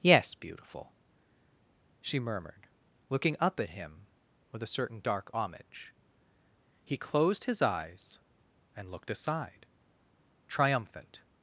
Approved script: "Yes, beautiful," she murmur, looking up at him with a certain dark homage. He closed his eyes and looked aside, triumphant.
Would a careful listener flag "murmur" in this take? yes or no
yes